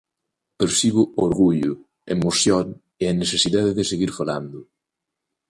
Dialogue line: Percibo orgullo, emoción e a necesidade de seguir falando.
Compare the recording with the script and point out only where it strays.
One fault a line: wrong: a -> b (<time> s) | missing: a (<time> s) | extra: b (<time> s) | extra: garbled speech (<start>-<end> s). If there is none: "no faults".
no faults